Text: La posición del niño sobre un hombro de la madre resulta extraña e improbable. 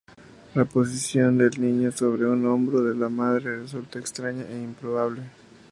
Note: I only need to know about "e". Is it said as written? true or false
true